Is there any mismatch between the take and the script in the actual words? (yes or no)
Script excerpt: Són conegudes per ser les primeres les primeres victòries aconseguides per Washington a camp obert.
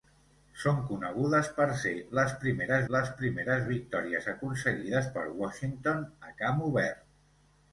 no